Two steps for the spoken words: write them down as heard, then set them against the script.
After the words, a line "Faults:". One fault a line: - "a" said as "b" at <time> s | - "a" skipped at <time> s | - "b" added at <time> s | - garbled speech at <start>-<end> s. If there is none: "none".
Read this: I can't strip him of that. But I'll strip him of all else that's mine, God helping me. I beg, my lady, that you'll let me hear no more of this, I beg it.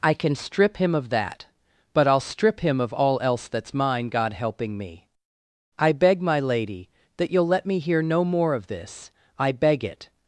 I can strip him of that. But I'll strip him of all else that's mine, God helping me. I beg, my lady, that you'll let me hear no more of this, I beg it.
Faults:
- "can't" said as "can" at 0.1 s